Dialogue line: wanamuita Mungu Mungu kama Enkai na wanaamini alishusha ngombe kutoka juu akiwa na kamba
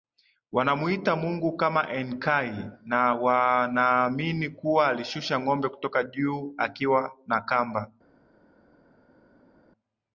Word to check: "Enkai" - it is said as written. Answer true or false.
true